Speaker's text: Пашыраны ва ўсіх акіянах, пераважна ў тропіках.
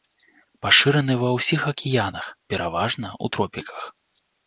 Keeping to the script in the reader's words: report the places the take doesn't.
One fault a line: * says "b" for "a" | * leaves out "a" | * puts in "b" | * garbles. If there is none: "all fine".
all fine